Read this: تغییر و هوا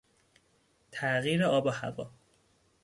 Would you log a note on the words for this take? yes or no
yes